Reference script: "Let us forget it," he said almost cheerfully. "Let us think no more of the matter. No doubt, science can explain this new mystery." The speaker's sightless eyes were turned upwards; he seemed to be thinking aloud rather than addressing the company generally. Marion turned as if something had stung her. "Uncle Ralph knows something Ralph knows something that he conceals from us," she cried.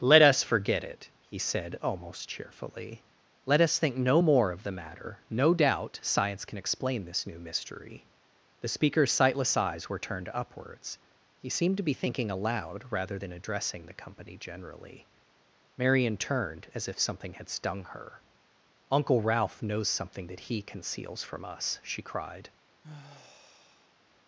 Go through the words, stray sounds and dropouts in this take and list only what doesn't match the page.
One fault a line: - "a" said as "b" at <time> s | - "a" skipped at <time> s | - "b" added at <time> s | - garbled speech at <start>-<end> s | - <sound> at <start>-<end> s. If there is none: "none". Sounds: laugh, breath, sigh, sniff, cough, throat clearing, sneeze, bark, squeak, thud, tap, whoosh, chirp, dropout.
- "Ralph knows something" skipped at 20.3 s
- sigh at 22.8-23.9 s